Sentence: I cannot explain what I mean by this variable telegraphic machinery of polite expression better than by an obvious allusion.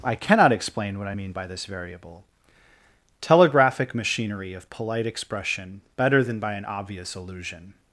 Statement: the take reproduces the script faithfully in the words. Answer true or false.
true